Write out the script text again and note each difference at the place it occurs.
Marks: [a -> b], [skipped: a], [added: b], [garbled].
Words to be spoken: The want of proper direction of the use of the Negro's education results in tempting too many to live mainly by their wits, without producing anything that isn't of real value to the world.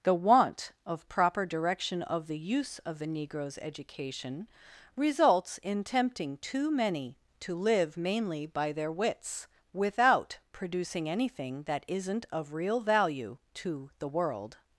The want of proper direction of the use of the Negro's education results in tempting too many to live mainly by their wits, without producing anything that isn't of real value to the world.